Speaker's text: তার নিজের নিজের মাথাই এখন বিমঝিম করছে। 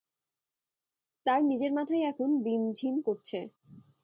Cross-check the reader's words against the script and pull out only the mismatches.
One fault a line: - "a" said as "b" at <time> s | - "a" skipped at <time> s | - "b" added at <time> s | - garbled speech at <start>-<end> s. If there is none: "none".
- "নিজের" skipped at 1.7 s